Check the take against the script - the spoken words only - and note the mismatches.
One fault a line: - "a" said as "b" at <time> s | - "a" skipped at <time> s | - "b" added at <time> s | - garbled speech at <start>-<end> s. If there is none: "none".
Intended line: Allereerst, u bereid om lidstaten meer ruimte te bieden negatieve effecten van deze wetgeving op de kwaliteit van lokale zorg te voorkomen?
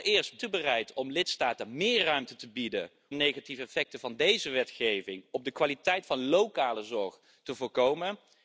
none